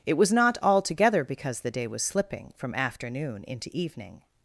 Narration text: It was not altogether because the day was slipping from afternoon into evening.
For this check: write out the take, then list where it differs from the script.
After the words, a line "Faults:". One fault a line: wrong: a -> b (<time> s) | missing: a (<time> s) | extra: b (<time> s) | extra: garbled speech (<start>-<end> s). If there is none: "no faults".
It was not altogether because the day was slipping from afternoon into evening.
Faults:
no faults